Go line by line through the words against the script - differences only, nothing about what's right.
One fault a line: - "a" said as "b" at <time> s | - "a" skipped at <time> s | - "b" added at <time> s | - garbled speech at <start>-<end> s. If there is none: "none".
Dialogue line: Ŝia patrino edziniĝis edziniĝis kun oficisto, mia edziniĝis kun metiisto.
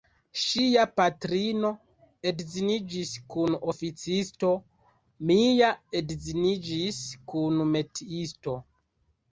- "edziniĝis" skipped at 3.1 s